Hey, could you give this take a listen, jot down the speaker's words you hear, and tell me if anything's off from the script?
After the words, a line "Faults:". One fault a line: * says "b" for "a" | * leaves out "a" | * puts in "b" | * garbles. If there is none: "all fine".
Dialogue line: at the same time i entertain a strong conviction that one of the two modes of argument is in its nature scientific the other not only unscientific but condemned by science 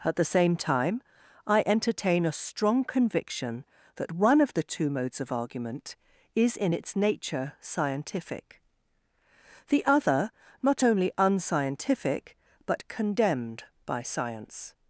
at the same time i entertain a strong conviction that one of the two modes of argument is in its nature scientific the other not only unscientific but condemned by science
Faults:
all fine